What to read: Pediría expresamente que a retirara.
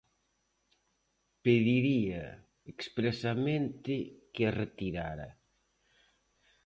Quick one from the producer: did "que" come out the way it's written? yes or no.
yes